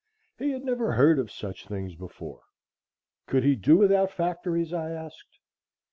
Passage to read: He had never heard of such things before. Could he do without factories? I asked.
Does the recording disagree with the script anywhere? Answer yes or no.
no